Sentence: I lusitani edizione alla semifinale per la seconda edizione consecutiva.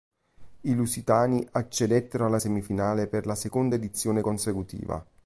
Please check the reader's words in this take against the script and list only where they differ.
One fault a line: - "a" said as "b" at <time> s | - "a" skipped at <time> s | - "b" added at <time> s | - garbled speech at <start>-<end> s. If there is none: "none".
- "edizione" said as "accedettero" at 1.5 s